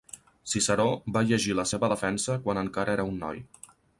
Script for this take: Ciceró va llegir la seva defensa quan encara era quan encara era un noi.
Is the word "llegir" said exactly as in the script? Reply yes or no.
yes